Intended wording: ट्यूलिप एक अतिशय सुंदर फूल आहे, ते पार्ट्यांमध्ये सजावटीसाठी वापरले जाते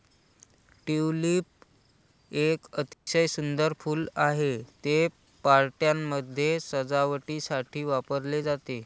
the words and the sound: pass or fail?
fail